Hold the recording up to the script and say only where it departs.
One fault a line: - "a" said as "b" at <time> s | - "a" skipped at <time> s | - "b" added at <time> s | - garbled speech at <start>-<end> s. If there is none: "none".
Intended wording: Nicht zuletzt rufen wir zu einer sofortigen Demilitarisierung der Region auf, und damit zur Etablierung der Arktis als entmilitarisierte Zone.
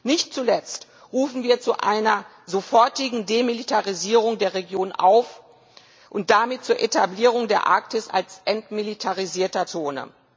none